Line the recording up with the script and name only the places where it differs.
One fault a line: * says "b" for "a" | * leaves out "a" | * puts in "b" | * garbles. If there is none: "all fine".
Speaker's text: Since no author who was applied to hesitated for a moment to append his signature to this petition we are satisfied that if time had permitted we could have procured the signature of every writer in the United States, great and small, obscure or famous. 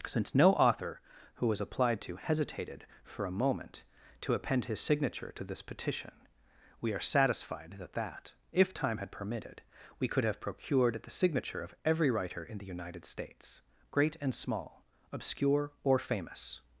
* puts in "that"